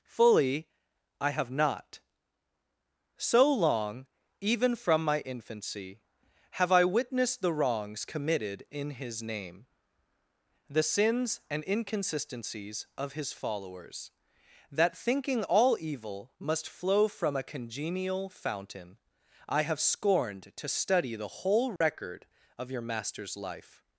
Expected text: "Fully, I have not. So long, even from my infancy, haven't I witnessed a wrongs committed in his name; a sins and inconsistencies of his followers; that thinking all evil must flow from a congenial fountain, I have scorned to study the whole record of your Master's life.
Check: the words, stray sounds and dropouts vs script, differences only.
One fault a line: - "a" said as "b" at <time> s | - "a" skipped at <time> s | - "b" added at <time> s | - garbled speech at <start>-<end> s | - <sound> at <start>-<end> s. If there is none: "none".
- "haven't" said as "have" at 6.5 s
- "a" said as "the" at 7.4 s
- "a" said as "the" at 10.7 s
- dropout at 21.8-21.8 s